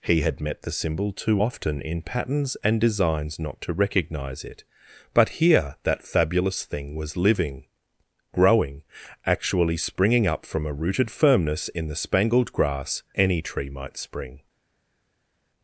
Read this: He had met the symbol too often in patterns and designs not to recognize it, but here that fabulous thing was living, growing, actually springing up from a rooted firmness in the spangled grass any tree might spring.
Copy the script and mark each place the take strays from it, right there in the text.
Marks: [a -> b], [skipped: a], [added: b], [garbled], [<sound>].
He had met the symbol too often in patterns and designs not to recognize it, but here that fabulous thing was living, growing, actually springing up from a rooted firmness in the spangled grass any tree might spring.